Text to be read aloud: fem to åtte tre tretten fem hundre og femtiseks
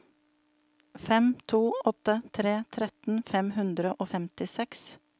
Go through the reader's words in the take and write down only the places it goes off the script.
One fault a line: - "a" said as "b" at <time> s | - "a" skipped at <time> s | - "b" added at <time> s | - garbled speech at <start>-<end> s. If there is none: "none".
none